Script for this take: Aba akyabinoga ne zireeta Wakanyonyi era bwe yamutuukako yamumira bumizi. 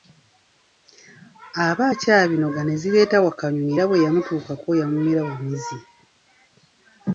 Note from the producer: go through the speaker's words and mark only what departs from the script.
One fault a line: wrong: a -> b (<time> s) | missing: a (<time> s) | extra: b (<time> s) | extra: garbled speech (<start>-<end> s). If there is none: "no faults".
no faults